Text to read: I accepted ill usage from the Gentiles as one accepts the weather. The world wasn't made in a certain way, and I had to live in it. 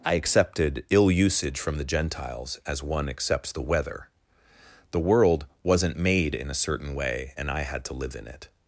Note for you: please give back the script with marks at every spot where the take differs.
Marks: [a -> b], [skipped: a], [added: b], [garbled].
I accepted ill usage from the Gentiles as one accepts the weather. The world wasn't made in a certain way, and I had to live in it.